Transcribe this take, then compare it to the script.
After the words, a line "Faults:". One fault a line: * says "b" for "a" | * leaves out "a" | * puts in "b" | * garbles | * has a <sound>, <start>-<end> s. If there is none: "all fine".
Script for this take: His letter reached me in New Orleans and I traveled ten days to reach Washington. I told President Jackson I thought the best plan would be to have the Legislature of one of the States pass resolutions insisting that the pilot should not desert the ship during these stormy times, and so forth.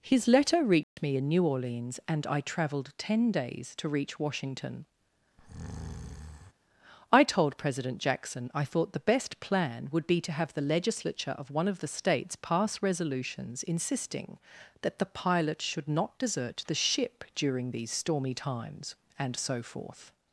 His letter reached me in New Orleans and I traveled ten days to reach Washington. I told President Jackson I thought the best plan would be to have the Legislature of one of the States pass resolutions insisting that the pilot should not desert the ship during these stormy times, and so forth.
Faults:
* has a dropout, 0.8-1.0 s
* has a breath, 5.4-6.5 s